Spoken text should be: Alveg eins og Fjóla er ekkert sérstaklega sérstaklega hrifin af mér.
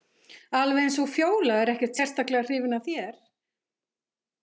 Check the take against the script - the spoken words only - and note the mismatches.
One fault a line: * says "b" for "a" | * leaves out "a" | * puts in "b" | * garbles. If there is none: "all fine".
* leaves out "sérstaklega"
* says "þér" for "mér"